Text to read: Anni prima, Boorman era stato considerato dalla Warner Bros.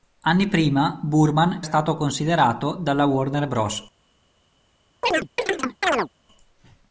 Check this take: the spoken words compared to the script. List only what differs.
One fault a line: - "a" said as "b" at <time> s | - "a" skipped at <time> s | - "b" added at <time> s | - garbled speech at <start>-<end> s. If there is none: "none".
- "era" skipped at 1.6 s